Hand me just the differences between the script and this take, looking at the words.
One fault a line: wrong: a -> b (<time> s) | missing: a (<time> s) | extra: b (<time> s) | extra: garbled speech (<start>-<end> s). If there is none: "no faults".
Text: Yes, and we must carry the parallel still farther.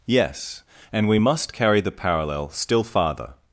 no faults